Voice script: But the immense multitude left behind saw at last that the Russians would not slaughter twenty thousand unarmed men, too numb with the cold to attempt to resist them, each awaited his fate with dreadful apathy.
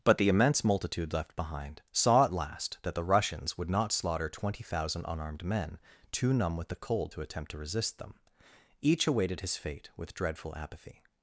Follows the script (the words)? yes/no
yes